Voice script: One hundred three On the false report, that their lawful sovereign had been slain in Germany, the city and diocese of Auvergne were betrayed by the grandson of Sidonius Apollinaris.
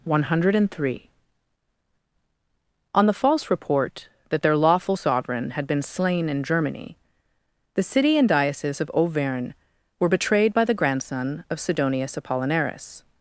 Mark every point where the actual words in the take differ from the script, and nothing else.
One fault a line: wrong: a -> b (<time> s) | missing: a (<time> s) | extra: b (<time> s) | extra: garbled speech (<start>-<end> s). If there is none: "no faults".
no faults